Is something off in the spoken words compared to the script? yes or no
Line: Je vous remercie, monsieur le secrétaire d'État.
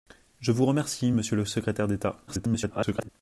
yes